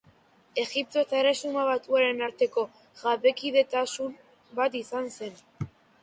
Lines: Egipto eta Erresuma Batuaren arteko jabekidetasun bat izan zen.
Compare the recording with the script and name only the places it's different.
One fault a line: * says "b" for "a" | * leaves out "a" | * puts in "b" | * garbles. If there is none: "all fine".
all fine